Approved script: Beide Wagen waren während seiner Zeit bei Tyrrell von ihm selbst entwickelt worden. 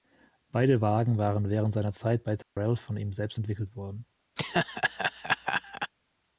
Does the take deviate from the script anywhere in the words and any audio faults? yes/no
yes